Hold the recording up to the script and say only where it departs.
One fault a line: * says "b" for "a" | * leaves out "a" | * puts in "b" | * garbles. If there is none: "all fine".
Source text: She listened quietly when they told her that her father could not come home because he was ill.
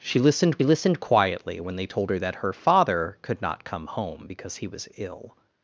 * puts in "listened"